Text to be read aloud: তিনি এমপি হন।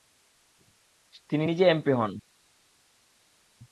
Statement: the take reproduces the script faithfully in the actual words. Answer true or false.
false